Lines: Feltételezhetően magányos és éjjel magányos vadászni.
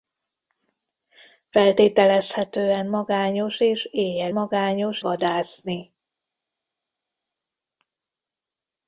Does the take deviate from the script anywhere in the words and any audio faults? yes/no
no